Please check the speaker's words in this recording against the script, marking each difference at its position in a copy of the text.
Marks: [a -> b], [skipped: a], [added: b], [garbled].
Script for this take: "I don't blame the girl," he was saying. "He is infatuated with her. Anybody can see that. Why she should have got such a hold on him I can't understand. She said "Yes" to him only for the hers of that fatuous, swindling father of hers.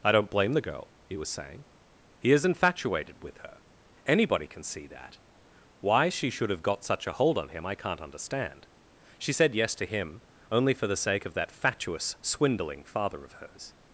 "I don't blame the girl," he was saying. "He is infatuated with her. Anybody can see that. Why she should have got such a hold on him I can't understand. She said "Yes" to him only for the [hers -> sake] of that fatuous, swindling father of hers.